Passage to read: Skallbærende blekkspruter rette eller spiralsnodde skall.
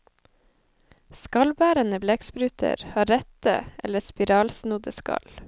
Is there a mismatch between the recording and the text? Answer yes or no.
yes